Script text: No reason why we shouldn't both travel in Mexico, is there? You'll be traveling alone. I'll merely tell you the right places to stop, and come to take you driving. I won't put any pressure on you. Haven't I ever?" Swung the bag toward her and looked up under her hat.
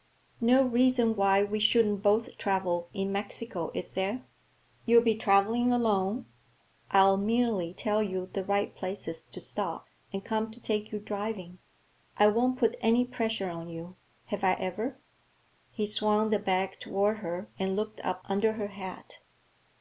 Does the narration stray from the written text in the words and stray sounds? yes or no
yes